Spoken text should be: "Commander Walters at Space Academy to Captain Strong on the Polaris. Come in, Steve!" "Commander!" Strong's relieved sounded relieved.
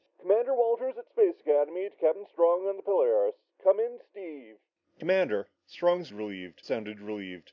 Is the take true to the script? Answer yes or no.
yes